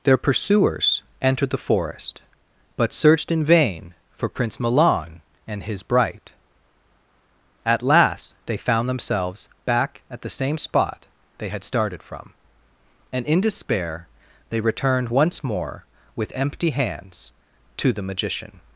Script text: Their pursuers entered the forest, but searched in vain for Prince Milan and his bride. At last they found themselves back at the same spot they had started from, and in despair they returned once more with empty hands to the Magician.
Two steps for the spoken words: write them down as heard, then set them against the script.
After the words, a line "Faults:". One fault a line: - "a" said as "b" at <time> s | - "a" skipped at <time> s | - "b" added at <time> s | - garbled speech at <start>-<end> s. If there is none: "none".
Their pursuers entered the forest, but searched in vain for Prince Milan and his bright. At last they found themselves back at the same spot they had started from, and in despair they returned once more with empty hands to the Magician.
Faults:
- "bride" said as "bright" at 5.8 s